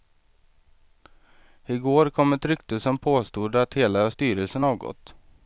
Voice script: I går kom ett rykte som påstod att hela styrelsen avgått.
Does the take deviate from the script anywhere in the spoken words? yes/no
no